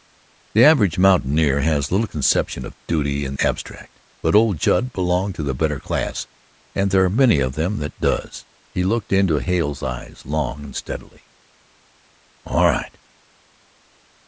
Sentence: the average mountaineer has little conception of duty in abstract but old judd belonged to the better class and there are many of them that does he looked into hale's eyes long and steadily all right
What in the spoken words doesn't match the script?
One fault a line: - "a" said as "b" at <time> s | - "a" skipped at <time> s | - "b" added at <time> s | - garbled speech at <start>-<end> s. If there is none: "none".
none